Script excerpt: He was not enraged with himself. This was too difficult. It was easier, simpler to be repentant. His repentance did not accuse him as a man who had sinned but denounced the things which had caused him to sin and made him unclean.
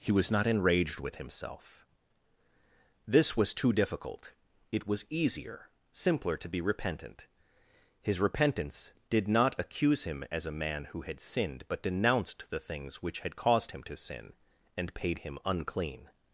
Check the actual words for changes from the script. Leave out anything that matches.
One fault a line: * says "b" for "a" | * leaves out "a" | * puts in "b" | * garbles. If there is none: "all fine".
* says "paid" for "made"